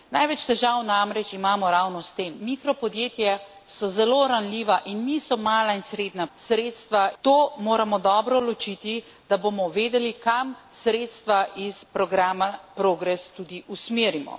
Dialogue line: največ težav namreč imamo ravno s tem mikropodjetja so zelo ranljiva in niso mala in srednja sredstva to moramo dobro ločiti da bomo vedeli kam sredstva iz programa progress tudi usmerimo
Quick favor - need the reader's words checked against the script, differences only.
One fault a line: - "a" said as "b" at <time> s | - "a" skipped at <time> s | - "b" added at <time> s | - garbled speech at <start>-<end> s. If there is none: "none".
none